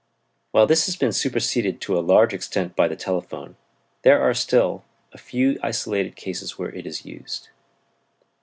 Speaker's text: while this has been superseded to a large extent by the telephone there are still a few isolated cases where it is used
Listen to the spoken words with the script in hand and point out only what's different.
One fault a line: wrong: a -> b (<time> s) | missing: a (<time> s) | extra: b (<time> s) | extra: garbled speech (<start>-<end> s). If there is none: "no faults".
no faults